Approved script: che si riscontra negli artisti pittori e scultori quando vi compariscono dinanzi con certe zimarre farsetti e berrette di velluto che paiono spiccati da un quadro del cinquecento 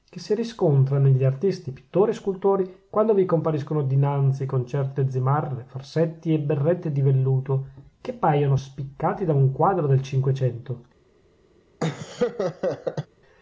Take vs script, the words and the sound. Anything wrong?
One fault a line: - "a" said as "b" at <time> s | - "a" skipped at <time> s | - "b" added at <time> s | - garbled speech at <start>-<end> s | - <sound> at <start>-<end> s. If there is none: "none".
- laugh at 11.8-13.1 s